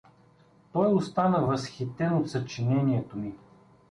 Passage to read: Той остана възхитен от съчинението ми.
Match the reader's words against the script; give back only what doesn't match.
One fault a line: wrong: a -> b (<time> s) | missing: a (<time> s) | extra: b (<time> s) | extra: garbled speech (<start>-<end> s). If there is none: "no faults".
no faults